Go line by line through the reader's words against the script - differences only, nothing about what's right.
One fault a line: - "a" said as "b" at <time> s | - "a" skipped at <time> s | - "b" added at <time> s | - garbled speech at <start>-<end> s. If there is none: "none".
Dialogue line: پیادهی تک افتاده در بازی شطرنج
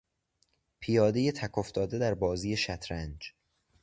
none